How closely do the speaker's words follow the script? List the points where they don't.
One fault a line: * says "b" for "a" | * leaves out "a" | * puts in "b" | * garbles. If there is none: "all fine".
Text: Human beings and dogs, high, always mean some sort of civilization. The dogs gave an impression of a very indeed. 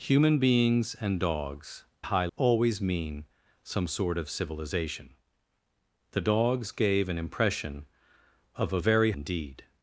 all fine